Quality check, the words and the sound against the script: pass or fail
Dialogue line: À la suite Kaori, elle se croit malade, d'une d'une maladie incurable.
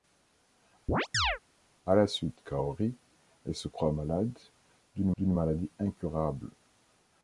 fail